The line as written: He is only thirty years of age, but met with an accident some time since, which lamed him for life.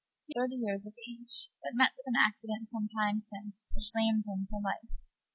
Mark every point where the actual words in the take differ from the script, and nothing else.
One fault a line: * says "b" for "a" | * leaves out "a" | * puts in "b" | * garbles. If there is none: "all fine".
* leaves out "is only"